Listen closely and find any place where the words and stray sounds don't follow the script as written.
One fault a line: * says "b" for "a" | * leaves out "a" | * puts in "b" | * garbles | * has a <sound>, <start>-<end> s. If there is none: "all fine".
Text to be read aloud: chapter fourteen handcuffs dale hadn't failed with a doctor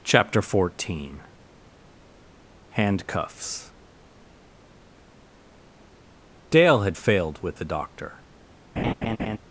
* says "had" for "hadn't"
* says "the" for "a"
* has a laugh, 8.8-9.4 s